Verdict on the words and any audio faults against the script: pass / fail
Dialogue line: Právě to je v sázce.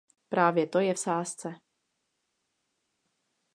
pass